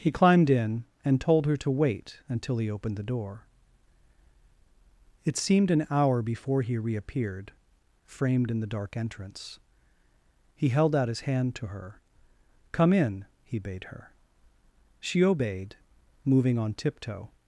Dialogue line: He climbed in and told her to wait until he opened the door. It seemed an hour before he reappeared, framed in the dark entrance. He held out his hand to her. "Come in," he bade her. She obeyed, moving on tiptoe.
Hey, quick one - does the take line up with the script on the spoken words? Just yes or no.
yes